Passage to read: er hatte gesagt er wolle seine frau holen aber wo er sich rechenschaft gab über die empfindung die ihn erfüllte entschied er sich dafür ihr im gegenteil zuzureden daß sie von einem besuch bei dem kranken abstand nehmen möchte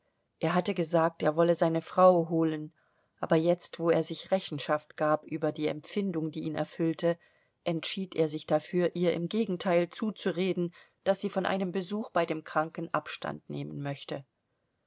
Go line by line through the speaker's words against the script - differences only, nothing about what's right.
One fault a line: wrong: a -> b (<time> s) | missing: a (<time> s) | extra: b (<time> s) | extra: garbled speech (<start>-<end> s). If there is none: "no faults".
extra: jetzt (3.4 s)